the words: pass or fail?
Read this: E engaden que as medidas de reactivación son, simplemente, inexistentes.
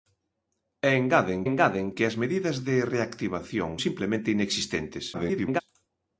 fail